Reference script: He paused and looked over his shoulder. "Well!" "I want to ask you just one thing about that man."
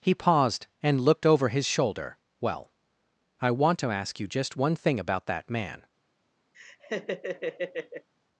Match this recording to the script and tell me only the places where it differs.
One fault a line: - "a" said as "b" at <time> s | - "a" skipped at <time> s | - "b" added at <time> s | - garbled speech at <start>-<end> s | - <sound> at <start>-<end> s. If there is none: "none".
- laugh at 6.5-8.1 s